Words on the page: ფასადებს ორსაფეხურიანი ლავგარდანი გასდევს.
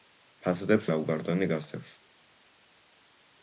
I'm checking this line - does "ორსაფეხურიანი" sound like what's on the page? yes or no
no